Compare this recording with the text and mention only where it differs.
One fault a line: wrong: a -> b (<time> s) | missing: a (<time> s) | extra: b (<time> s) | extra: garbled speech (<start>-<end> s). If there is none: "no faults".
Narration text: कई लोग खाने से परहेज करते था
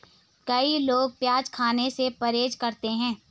extra: प्याज (1.2 s)
wrong: था -> है (3.0 s)